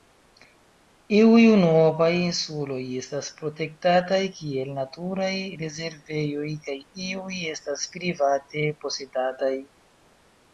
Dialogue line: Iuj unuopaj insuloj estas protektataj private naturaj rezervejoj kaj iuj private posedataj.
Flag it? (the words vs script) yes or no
yes